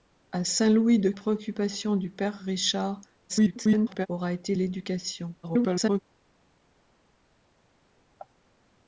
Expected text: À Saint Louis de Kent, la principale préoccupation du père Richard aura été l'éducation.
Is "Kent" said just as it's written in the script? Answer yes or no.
no